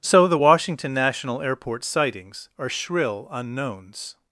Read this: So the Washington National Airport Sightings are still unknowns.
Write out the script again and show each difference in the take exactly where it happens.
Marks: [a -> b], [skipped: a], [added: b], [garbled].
So the Washington National Airport Sightings are [still -> shrill] unknowns.